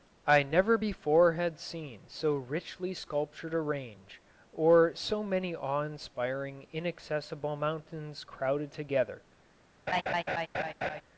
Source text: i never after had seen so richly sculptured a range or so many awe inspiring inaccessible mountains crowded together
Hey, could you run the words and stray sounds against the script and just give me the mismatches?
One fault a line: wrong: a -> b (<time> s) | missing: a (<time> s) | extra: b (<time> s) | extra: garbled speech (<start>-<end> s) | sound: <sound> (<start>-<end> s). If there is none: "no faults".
wrong: after -> before (0.8 s)
sound: laugh (9.9-11.0 s)